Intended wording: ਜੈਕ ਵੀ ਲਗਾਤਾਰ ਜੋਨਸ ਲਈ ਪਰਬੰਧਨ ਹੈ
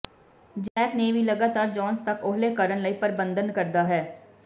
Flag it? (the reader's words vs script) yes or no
yes